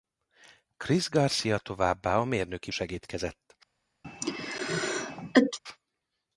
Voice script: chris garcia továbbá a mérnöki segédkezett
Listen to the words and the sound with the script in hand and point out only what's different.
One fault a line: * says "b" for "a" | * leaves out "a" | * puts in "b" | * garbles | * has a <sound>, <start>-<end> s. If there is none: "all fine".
* has a sneeze, 4.0-5.6 s